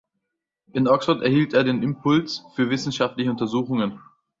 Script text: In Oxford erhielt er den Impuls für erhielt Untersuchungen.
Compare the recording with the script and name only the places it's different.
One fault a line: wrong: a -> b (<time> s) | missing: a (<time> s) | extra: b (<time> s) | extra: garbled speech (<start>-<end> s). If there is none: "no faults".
wrong: erhielt -> wissenschaftliche (2.7 s)